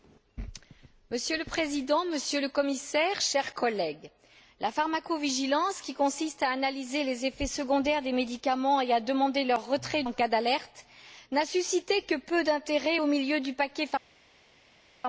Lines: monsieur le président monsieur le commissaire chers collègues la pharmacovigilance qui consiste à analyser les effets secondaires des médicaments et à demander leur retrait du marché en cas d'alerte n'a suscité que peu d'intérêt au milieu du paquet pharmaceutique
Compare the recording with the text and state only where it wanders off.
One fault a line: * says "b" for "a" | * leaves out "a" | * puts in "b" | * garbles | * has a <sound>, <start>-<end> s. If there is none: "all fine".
* leaves out "du marché"